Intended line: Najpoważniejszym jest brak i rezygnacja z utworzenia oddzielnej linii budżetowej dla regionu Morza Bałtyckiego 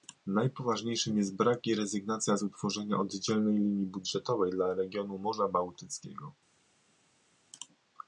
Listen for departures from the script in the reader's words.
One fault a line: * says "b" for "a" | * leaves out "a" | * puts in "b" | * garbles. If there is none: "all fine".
all fine